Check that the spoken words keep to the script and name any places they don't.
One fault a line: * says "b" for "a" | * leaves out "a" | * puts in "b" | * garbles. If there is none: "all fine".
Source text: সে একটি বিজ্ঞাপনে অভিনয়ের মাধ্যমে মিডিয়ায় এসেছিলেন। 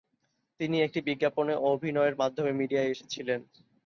* says "তিনি" for "সে"